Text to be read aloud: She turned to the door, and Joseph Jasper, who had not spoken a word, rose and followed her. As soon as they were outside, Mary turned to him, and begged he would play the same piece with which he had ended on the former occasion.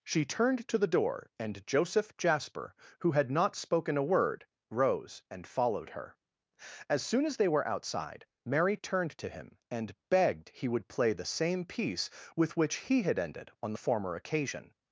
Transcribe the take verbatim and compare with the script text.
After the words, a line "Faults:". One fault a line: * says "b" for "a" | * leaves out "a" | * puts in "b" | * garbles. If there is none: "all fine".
She turned to the door, and Joseph Jasper, who had not spoken a word, rose and followed her. As soon as they were outside, Mary turned to him, and begged he would play the same piece with which he had ended on the former occasion.
Faults:
all fine